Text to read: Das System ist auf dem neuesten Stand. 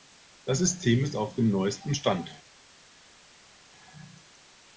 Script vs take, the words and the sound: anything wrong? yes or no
no